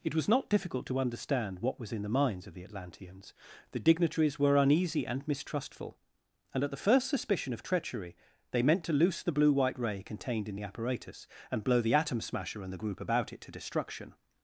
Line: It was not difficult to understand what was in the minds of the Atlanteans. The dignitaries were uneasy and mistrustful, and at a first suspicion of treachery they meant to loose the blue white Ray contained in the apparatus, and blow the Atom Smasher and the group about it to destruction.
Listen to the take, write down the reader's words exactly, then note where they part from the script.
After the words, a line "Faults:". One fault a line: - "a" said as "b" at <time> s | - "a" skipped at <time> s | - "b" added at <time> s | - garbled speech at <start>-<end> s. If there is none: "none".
It was not difficult to understand what was in the minds of the Atlanteans. The dignitaries were uneasy and mistrustful, and at the first suspicion of treachery they meant to loose the blue white Ray contained in the apparatus, and blow the Atom Smasher and the group about it to destruction.
Faults:
- "a" said as "the" at 6.7 s